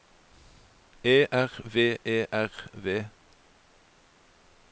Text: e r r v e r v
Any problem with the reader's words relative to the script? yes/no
yes